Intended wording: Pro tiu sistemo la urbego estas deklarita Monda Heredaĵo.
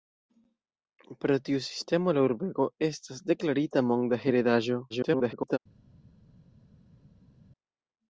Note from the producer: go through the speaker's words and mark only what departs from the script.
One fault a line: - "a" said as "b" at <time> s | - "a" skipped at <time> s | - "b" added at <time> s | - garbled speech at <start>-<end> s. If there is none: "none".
- garbled speech at 4.9-5.6 s